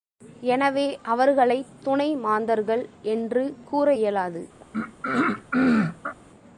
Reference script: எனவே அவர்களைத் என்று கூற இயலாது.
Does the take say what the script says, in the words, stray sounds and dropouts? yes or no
no